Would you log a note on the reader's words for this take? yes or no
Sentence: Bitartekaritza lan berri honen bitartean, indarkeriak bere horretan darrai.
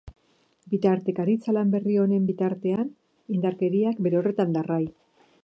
no